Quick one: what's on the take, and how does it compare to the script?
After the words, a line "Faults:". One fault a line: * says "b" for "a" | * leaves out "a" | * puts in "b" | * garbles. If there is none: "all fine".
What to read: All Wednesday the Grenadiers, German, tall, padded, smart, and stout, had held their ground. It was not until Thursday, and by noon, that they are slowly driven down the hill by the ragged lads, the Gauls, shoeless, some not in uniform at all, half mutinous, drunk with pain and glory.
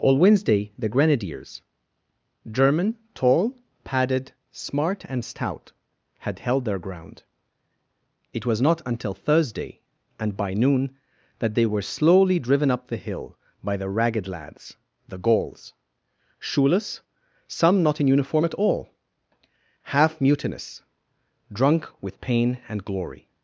All Wednesday the Grenadiers, German, tall, padded, smart, and stout, had held their ground. It was not until Thursday, and by noon, that they were slowly driven up the hill by the ragged lads, the Gauls, shoeless, some not in uniform at all, half mutinous, drunk with pain and glory.
Faults:
* says "were" for "are"
* says "up" for "down"